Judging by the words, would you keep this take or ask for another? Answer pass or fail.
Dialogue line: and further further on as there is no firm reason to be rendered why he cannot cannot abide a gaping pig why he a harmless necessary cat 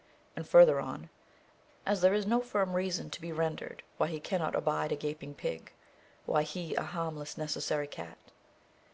fail